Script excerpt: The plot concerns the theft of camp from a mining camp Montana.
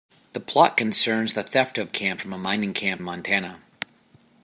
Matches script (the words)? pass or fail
pass